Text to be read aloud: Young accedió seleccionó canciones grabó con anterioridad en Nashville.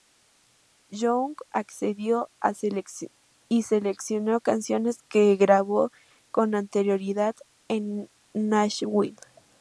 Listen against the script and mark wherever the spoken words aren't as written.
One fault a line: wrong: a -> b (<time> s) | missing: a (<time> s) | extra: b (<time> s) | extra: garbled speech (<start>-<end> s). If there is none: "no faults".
extra: y (3.5 s)
extra: que (5.1 s)